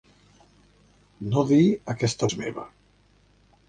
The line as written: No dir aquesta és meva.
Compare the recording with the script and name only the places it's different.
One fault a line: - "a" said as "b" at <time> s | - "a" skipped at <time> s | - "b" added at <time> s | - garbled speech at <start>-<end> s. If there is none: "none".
none